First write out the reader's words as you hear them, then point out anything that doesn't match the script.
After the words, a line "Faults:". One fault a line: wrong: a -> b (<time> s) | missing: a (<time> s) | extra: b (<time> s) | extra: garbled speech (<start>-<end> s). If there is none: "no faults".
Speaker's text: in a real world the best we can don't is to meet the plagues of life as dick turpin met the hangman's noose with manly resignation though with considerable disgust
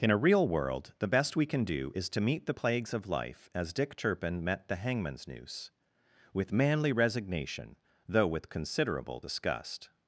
in a real world the best we can do is to meet the plagues of life as dick turpin met the hangman's noose with manly resignation though with considerable disgust
Faults:
wrong: don't -> do (1.6 s)